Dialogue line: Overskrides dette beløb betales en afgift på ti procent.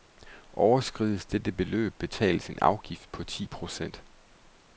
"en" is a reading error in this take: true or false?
false